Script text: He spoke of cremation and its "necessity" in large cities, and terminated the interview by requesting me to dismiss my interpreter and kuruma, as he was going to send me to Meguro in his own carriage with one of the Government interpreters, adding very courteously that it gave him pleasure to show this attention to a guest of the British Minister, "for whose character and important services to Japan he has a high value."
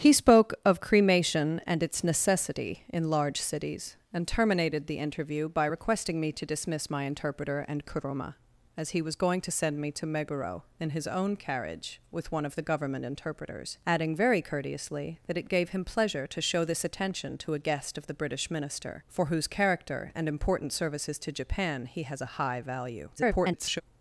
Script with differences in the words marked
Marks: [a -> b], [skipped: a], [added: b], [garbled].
He spoke of cremation and its "necessity" in large cities, and terminated the interview by requesting me to dismiss my interpreter and kuruma, as he was going to send me to Meguro in his own carriage with one of the Government interpreters, adding very courteously that it gave him pleasure to show this attention to a guest of the British Minister, "for whose character and important services to Japan he has a high value." [garbled]